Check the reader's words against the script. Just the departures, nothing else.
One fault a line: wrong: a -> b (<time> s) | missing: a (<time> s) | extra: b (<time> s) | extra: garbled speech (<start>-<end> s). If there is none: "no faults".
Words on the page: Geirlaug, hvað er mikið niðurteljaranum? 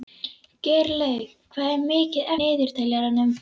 no faults